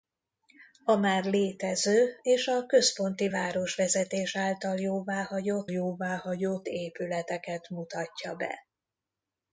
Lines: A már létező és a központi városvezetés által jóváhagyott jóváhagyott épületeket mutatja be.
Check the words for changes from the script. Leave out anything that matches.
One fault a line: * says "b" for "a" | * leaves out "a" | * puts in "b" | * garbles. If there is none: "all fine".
all fine